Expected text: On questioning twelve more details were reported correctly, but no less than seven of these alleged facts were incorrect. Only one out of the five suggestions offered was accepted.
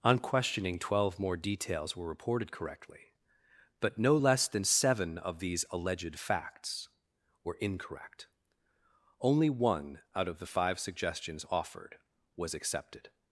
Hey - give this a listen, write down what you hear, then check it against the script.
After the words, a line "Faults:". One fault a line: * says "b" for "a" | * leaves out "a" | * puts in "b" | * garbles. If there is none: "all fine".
On questioning twelve more details were reported correctly, but no less than seven of these alleged facts were incorrect. Only one out of the five suggestions offered was accepted.
Faults:
all fine